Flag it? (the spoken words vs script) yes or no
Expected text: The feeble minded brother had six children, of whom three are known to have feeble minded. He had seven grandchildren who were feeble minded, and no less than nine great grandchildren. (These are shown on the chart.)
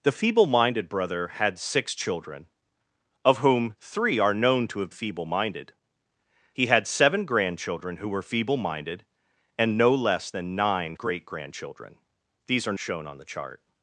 no